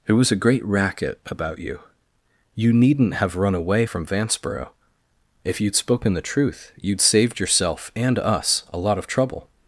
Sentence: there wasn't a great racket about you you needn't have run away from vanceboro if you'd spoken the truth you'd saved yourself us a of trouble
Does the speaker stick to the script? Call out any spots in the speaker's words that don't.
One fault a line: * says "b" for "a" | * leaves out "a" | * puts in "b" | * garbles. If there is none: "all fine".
* says "was" for "wasn't"
* puts in "and"
* puts in "lot"